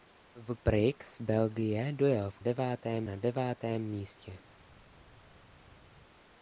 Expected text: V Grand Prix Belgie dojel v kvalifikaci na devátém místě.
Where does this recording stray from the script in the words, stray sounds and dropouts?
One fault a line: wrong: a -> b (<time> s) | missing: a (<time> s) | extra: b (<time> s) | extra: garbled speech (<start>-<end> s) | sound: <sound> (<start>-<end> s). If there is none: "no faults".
missing: Grand (0.6 s)
wrong: kvalifikaci -> devátém (2.4 s)